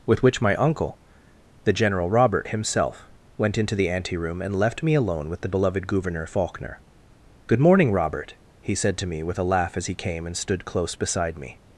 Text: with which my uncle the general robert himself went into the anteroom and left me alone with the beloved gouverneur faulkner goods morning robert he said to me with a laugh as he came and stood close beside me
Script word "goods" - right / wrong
wrong